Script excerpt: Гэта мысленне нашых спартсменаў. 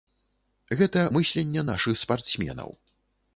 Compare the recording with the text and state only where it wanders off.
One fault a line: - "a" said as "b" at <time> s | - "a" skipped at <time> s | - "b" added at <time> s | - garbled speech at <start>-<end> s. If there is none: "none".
none